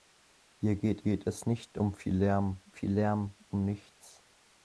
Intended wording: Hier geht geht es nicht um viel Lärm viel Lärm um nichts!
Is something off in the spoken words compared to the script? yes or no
no